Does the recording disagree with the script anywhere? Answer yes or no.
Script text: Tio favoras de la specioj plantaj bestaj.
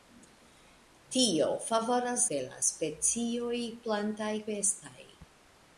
no